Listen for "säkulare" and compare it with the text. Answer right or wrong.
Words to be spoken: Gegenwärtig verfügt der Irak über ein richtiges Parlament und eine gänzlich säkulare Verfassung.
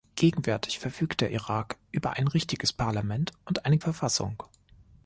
wrong